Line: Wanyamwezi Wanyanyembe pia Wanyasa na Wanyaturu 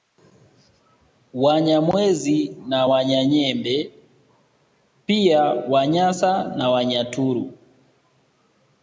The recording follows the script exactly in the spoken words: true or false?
false